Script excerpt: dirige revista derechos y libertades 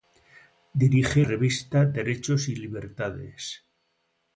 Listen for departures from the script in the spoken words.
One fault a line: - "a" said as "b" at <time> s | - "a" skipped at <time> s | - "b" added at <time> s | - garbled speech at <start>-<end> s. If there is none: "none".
none